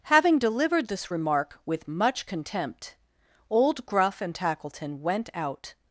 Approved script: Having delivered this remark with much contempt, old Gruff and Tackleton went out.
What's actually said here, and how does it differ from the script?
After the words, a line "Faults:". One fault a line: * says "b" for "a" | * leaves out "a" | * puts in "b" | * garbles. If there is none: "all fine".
Having delivered this remark with much contempt, old Gruff and Tackleton went out.
Faults:
all fine